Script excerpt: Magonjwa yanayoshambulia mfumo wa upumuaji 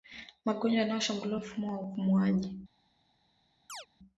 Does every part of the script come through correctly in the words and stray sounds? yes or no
no